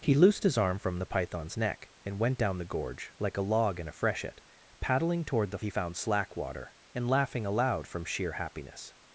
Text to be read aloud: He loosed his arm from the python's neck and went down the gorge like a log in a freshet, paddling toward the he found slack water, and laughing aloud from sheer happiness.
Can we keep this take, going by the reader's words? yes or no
yes